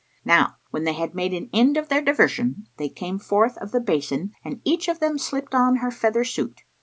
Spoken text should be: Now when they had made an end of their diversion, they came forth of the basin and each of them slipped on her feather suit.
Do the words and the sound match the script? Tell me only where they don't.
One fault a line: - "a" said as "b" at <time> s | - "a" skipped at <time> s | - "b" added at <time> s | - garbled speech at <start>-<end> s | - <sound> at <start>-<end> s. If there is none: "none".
none